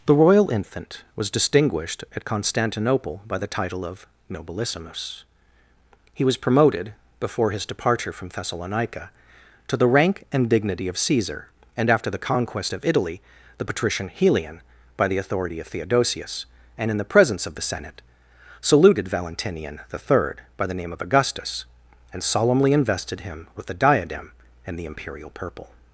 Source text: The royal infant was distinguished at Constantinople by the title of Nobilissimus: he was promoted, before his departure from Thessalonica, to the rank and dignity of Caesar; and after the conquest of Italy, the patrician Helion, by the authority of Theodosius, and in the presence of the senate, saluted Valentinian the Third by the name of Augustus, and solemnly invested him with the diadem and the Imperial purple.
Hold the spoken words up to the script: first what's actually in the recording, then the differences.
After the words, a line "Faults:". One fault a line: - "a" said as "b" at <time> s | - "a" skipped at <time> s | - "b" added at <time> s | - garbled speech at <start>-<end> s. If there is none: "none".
The royal infant was distinguished at Constantinople by the title of Nobilissimus: he was promoted, before his departure from Thessalonica, to the rank and dignity of Caesar; and after the conquest of Italy, the patrician Helion, by the authority of Theodosius, and in the presence of the senate, saluted Valentinian the Third by the name of Augustus, and solemnly invested him with the diadem and the Imperial purple.
Faults:
none